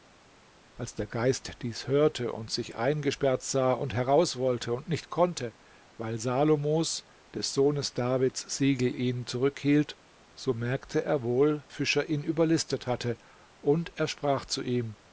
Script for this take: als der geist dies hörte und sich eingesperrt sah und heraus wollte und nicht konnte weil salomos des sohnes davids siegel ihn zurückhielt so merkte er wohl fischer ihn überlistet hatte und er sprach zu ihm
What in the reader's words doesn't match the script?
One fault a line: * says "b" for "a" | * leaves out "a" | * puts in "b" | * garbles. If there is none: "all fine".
all fine